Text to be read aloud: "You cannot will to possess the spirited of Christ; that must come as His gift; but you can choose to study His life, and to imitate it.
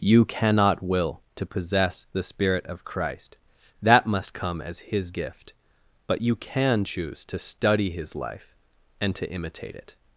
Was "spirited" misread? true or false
true